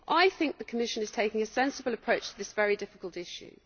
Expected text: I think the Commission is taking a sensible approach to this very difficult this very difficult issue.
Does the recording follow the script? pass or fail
fail